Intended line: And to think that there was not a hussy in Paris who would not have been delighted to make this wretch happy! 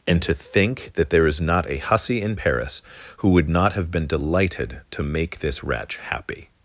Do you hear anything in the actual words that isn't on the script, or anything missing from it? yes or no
yes